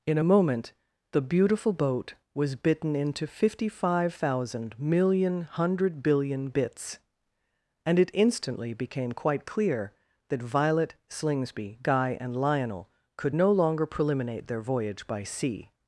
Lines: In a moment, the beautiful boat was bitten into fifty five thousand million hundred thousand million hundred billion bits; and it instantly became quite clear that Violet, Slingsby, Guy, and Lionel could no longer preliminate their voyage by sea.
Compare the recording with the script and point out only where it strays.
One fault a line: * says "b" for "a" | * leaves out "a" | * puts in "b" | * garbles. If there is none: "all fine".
* leaves out "thousand million hundred"